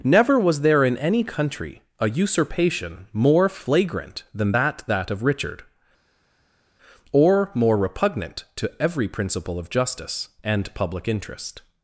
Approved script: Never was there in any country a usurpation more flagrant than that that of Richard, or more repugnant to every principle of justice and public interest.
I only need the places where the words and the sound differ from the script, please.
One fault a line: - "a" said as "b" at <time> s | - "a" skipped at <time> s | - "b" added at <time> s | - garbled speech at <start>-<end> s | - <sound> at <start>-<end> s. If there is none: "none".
none